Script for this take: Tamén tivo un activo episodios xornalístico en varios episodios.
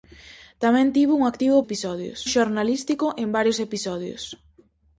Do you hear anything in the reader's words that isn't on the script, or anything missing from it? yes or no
no